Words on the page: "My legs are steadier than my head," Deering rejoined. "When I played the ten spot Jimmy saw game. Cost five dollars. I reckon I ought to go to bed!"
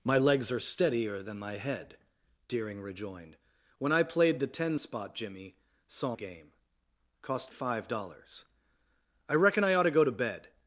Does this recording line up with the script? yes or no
yes